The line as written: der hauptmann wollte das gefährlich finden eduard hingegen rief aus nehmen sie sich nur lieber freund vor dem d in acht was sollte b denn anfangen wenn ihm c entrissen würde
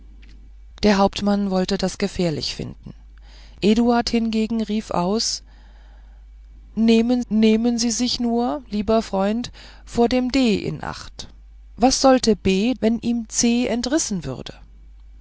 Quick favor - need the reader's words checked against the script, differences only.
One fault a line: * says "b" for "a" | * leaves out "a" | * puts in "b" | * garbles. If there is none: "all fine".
* puts in "nehmen"
* leaves out "denn anfangen"